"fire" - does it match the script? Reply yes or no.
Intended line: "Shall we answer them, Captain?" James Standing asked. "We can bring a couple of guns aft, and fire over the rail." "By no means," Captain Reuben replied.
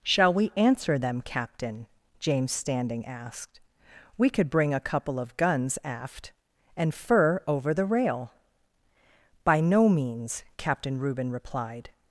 no